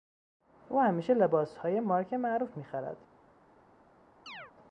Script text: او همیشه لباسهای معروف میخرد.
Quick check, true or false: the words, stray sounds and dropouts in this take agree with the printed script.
false